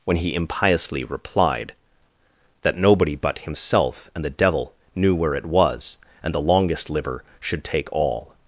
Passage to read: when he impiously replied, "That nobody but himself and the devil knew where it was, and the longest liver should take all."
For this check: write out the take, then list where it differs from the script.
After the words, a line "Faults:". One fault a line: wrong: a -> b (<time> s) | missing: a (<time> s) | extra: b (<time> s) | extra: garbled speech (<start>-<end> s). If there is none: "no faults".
when he impiously replied, "That nobody but himself and the devil knew where it was, and the longest liver should take all."
Faults:
no faults